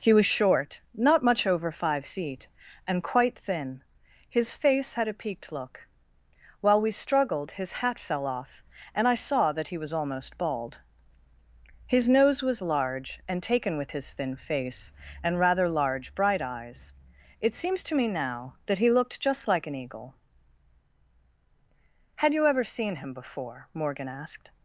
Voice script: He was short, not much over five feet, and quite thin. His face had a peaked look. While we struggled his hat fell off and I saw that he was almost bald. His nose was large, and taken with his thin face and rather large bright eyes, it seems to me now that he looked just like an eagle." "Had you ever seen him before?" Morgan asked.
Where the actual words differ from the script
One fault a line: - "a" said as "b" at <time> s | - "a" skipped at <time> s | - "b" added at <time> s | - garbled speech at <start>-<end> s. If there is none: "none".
none